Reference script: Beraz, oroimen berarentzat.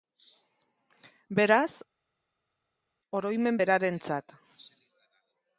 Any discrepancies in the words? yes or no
no